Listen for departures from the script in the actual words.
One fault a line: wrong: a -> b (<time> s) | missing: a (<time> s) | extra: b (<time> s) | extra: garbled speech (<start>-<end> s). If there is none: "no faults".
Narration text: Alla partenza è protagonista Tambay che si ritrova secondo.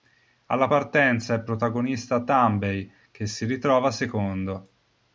no faults